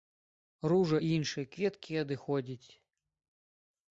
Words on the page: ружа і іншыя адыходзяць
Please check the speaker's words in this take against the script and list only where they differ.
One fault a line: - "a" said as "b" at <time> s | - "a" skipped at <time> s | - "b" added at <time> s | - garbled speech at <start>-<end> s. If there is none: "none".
- "кветкі" added at 1.5 s